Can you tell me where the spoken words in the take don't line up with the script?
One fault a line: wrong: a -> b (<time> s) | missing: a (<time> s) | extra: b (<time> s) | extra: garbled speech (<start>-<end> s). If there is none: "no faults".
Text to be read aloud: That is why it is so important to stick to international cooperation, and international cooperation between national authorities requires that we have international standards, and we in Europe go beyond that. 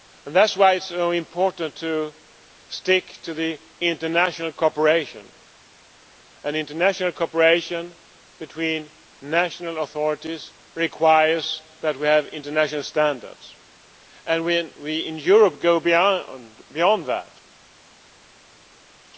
no faults